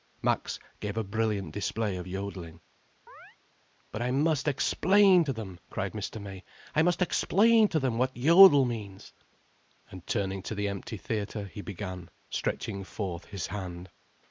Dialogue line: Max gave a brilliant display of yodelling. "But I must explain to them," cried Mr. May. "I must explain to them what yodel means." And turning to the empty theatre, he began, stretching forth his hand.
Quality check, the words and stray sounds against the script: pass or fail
fail